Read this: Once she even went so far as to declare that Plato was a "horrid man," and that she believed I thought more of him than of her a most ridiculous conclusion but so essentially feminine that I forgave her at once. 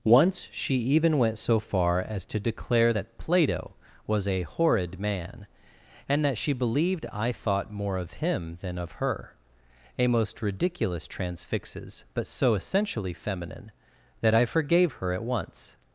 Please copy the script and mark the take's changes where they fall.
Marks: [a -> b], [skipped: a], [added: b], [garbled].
Once she even went so far as to declare that Plato was a "horrid man," and that she believed I thought more of him than of her a most ridiculous [conclusion -> transfixes] but so essentially feminine that I forgave her at once.